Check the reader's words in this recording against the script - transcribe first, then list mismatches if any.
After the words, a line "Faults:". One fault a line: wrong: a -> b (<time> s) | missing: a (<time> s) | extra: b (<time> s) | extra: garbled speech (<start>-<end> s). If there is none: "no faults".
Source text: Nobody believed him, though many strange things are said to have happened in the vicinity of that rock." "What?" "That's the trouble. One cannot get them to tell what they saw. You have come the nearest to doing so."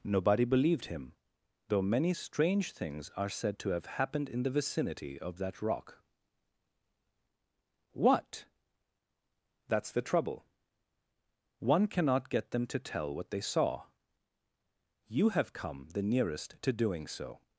Nobody believed him, though many strange things are said to have happened in the vicinity of that rock." "What?" "That's the trouble. One cannot get them to tell what they saw. You have come the nearest to doing so."
Faults:
no faults